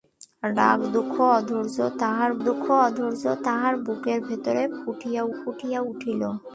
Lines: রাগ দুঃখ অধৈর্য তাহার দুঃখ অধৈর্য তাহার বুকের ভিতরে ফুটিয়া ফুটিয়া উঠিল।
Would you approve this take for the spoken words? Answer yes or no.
yes